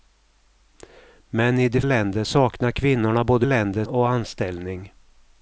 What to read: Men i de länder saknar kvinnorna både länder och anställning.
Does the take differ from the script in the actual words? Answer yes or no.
no